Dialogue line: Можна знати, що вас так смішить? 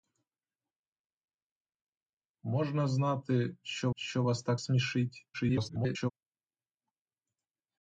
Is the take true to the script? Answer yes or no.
no